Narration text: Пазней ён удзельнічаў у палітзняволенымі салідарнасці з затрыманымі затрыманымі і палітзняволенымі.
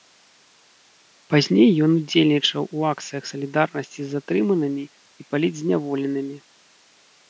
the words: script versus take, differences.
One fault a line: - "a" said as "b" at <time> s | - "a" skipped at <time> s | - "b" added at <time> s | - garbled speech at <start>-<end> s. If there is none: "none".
- "палітзняволенымі" said as "акцыях" at 2.9 s
- "затрыманымі" skipped at 4.8 s